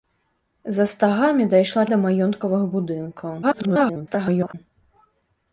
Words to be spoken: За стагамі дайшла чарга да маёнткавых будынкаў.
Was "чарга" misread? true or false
true